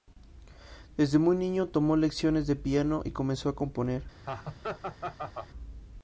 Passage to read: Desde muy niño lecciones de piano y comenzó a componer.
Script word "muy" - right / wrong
right